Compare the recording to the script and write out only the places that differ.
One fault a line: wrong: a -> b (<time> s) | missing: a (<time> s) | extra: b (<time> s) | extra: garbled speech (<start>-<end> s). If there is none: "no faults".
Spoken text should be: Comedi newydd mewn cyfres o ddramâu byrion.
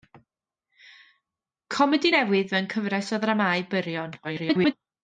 extra: garbled speech (4.2-4.7 s)